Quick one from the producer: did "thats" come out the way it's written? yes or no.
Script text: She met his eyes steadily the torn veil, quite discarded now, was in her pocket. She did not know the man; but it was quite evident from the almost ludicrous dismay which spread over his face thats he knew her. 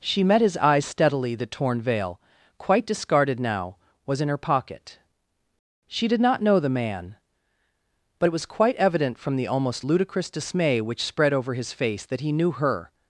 no